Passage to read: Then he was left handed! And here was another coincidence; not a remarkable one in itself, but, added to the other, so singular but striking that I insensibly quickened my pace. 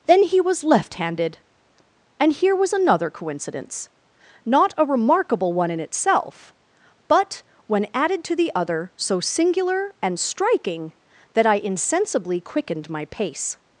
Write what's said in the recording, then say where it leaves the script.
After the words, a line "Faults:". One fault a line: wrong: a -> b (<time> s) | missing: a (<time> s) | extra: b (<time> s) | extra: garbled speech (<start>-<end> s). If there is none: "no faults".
Then he was left handed! And here was another coincidence; not a remarkable one in itself, but, when added to the other, so singular and striking that I insensibly quickened my pace.
Faults:
extra: when (7.7 s)
wrong: but -> and (10.0 s)